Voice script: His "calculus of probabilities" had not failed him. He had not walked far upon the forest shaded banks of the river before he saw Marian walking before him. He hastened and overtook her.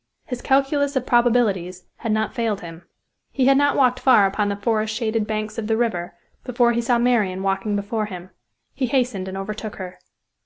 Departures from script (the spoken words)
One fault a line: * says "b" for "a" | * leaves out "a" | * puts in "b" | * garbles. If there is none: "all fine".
all fine